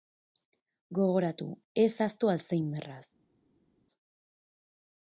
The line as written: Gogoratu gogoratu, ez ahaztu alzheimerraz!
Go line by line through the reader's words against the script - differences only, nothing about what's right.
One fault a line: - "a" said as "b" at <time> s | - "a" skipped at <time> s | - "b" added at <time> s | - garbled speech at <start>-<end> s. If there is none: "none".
- "gogoratu" skipped at 1.5 s